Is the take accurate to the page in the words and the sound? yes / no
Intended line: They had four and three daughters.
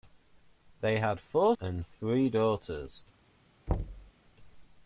no